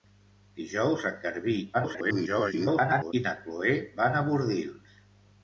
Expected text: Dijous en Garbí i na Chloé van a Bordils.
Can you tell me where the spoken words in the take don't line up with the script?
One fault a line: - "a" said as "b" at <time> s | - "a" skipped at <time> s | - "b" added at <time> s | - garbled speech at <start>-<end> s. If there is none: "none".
- garbled speech at 1.7-3.1 s